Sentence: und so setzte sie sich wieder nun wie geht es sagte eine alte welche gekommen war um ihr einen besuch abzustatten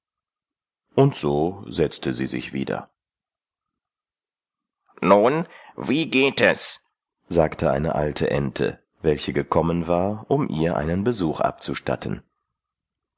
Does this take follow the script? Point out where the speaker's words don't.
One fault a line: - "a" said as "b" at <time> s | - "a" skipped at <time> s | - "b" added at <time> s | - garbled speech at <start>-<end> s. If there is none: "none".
- "ente" added at 8.3 s